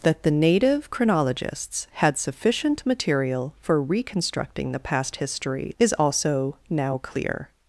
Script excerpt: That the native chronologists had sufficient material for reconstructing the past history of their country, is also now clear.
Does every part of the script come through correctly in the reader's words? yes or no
no